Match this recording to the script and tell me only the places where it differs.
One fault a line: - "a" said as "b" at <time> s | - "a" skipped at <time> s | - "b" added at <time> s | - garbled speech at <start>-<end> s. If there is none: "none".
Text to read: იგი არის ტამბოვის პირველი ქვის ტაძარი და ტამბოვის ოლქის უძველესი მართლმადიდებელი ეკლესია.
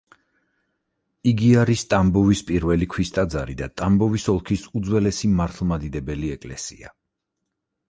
none